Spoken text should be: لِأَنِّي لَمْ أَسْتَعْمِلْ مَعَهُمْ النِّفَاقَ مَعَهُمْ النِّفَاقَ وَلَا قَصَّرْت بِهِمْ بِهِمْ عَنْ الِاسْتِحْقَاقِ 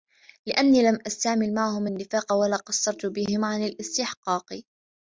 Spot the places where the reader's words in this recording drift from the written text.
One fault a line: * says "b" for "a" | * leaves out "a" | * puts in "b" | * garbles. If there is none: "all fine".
* leaves out "مَعَهُمْ النِّفَاقَ"
* leaves out "بِهِمْ"